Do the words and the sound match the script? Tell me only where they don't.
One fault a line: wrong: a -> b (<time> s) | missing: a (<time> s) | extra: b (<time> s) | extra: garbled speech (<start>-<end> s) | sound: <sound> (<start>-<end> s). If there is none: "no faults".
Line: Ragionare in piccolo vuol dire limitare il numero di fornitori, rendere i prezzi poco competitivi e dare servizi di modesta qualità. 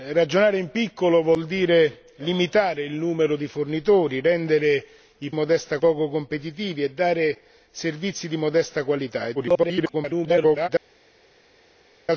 wrong: prezzi -> modesta (5.3 s)
extra: garbled speech (9.3-10.7 s)